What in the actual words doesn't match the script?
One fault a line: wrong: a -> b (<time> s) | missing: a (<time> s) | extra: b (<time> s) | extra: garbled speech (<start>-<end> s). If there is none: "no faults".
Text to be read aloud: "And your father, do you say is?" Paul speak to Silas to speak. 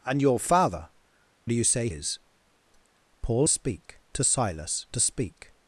no faults